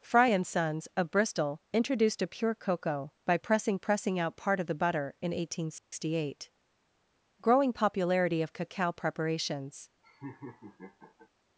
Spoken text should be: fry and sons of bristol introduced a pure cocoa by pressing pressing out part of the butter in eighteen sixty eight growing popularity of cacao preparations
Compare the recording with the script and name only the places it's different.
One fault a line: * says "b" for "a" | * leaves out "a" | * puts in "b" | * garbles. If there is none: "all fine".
all fine